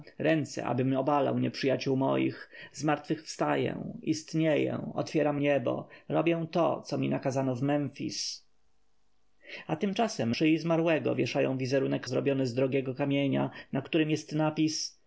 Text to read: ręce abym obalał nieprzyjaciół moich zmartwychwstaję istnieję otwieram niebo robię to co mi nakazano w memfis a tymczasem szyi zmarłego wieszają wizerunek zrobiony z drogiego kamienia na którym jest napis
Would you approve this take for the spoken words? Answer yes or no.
yes